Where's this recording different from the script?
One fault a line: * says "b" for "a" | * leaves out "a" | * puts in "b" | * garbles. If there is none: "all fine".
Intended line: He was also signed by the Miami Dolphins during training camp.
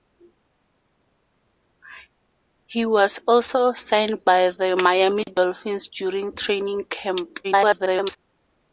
* garbles